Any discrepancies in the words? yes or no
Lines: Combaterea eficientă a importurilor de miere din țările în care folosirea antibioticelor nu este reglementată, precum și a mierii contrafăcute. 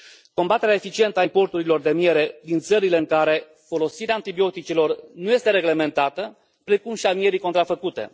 no